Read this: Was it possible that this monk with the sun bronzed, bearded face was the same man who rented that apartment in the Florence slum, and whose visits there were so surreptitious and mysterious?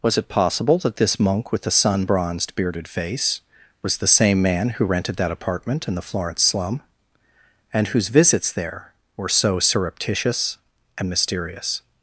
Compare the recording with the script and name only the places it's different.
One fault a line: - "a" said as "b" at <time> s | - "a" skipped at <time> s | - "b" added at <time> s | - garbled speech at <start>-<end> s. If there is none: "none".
none